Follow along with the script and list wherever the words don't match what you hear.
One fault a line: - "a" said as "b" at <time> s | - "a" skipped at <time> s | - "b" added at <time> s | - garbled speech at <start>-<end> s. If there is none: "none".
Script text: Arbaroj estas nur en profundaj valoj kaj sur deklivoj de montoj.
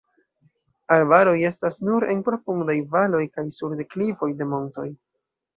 none